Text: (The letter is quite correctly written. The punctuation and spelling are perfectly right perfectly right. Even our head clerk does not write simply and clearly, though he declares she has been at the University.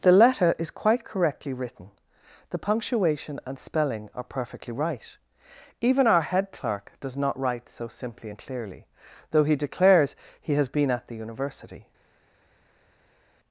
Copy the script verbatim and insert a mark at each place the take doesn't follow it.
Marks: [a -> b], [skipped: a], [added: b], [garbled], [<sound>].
(The letter is quite correctly written. The punctuation and spelling are perfectly right [skipped: perfectly right.] Even our head clerk does not write [added: so] simply and clearly, though he declares [she -> he] has been at the University.